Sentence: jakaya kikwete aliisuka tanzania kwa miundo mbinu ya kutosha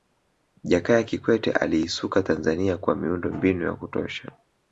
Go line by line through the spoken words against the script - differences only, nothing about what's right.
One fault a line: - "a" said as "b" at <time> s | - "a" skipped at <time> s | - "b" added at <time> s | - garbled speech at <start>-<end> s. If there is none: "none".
none